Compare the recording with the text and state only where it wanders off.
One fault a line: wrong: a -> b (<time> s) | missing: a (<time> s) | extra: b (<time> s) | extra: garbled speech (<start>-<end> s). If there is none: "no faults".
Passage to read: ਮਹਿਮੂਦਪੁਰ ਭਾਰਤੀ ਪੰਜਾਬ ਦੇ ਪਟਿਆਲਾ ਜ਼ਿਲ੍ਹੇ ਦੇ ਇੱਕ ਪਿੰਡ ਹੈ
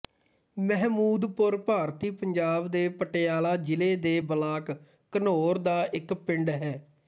extra: ਬਲਾਕ ਘਨੌਰ ਦਾ (4.3 s)